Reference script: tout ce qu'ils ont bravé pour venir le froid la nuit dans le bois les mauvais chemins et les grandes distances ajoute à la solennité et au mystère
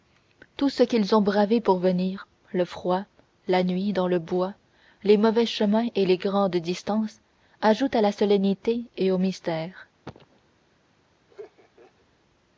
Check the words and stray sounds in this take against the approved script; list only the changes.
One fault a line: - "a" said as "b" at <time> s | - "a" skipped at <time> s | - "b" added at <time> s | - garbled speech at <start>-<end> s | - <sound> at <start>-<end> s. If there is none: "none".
- cough at 10.0-10.4 s
- laugh at 11.3-12.1 s